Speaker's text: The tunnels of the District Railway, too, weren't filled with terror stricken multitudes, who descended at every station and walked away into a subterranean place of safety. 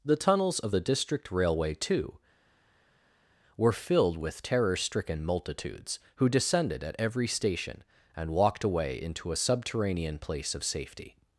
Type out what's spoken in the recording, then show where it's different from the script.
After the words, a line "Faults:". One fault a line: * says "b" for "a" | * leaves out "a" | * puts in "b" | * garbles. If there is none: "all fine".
The tunnels of the District Railway, too, were filled with terror stricken multitudes, who descended at every station and walked away into a subterranean place of safety.
Faults:
* says "were" for "weren't"